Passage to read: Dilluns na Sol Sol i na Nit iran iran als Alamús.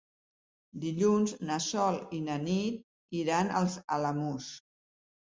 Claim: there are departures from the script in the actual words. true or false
true